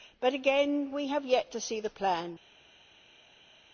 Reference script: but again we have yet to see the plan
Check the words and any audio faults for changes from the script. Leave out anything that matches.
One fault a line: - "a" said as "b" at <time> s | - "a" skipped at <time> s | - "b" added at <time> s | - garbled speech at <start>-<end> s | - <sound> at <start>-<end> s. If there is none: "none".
none